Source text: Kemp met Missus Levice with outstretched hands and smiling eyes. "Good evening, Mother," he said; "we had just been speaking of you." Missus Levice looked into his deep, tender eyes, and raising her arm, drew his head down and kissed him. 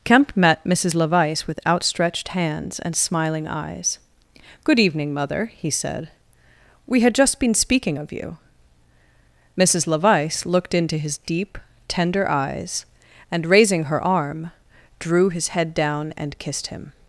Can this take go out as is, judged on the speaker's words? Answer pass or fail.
pass